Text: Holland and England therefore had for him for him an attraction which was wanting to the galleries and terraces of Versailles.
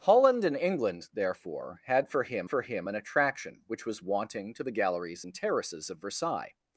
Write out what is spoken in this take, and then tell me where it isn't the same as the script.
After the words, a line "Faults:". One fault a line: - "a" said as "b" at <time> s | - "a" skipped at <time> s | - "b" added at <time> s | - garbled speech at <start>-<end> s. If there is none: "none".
Holland and England therefore had for him for him an attraction which was wanting to the galleries and terraces of Versailles.
Faults:
none